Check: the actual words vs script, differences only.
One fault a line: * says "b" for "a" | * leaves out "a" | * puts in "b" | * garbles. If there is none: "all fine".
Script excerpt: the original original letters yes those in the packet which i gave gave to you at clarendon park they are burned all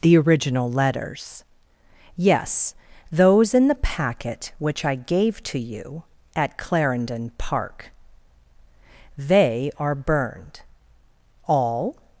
* leaves out "original"
* leaves out "gave"